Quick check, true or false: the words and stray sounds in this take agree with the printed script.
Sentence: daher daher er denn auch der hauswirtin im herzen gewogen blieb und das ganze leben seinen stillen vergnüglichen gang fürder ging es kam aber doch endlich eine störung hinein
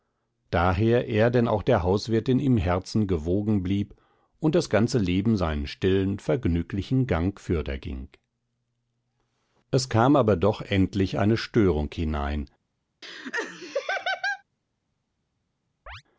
false